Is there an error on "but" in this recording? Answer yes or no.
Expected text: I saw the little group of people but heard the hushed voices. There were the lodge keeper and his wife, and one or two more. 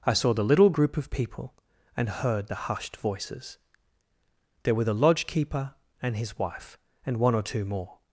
yes